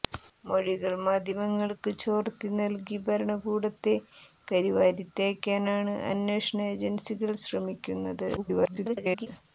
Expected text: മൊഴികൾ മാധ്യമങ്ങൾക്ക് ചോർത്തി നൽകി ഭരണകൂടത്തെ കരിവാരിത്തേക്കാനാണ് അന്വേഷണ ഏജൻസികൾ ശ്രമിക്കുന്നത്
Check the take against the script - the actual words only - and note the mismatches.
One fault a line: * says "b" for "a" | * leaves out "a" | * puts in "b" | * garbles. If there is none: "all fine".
* garbles